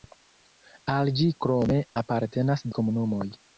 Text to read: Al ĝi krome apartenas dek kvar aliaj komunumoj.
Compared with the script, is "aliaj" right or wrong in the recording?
wrong